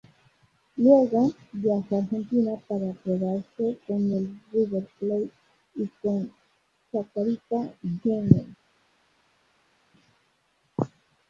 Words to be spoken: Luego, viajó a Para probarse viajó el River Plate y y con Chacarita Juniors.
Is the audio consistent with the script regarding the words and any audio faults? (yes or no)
no